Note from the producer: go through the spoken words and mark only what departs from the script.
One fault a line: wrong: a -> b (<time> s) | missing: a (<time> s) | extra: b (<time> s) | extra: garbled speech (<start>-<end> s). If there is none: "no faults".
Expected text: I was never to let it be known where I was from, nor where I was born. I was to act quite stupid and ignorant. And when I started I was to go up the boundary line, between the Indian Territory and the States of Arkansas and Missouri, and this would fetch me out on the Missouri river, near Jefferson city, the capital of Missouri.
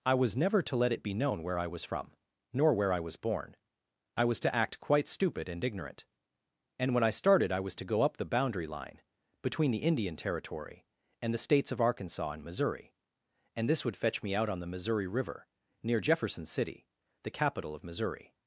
no faults